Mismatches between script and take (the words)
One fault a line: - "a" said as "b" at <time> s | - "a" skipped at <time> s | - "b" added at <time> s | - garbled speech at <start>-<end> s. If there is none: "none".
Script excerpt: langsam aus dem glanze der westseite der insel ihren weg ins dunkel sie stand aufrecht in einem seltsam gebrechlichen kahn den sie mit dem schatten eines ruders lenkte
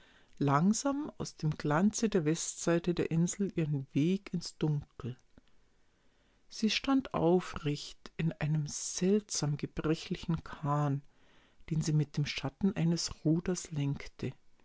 none